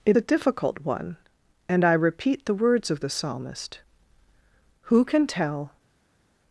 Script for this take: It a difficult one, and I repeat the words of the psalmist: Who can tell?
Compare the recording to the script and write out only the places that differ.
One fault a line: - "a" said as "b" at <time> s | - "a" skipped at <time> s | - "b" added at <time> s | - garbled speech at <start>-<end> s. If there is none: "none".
none